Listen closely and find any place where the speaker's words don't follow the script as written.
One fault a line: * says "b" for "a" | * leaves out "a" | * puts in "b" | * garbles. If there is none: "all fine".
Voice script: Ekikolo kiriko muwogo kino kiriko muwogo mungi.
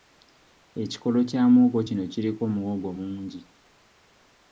* says "kya" for "kiriko"